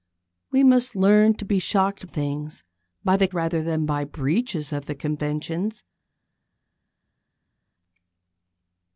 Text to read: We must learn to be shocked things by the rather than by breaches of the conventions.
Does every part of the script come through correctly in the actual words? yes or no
yes